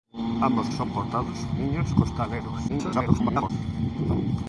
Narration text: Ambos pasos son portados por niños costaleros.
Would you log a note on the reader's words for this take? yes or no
yes